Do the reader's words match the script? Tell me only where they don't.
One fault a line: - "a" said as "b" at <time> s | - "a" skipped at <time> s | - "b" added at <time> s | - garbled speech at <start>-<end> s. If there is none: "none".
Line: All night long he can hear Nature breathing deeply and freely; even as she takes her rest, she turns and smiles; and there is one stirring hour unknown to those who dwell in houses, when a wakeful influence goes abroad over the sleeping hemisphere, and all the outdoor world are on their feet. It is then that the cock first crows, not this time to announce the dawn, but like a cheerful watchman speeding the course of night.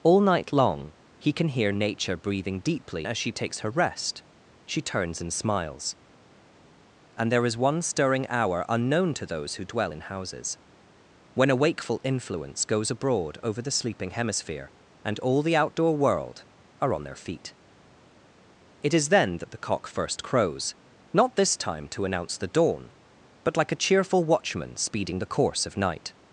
- "and freely even" skipped at 3.1 s